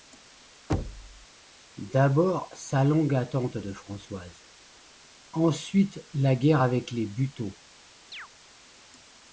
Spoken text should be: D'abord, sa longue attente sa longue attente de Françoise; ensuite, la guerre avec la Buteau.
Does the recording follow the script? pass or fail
fail